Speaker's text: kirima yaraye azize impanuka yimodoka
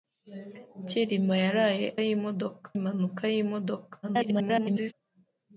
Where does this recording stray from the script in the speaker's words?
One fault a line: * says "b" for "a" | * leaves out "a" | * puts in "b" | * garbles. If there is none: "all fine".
* says "yimodoka" for "azize"
* garbles